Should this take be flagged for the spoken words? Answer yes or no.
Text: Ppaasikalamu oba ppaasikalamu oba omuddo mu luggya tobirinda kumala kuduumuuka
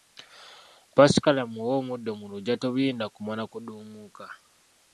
yes